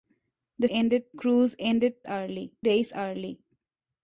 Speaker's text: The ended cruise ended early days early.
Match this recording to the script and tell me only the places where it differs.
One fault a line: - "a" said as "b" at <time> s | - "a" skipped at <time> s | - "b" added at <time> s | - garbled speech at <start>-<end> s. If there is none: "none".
none